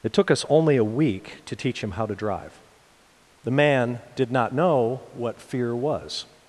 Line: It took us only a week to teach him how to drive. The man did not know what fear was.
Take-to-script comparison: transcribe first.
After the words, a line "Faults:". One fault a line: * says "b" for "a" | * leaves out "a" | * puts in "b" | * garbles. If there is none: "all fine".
It took us only a week to teach him how to drive. The man did not know what fear was.
Faults:
all fine